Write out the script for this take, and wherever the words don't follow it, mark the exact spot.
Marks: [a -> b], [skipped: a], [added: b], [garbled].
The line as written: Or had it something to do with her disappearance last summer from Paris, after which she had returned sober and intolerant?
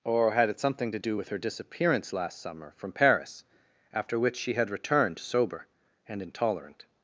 Or had it something to do with her disappearance last summer from Paris, after which she had returned sober and intolerant?